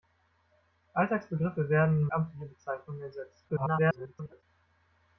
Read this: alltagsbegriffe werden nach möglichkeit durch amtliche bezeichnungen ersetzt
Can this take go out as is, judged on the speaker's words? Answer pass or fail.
fail